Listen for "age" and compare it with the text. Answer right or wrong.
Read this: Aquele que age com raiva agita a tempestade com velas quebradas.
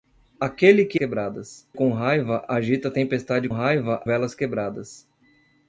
wrong